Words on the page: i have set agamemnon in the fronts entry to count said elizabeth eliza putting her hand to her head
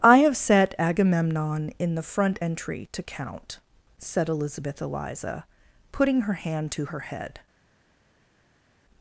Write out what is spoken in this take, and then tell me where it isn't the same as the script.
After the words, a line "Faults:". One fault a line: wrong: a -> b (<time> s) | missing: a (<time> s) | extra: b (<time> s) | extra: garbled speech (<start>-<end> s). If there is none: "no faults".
i have set agamemnon in the front entry to count said elizabeth eliza putting her hand to her head
Faults:
wrong: fronts -> front (2.0 s)